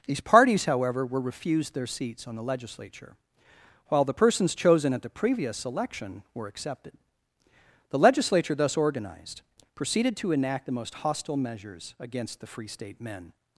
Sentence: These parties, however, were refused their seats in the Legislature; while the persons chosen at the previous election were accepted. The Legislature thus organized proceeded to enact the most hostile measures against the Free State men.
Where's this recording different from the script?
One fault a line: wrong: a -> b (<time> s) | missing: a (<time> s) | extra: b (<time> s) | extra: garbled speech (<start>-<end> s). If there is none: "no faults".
wrong: in -> on (2.3 s)